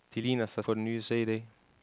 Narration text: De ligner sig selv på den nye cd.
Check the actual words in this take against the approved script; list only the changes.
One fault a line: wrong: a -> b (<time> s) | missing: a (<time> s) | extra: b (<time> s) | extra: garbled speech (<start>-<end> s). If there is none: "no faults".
missing: selv (0.7 s)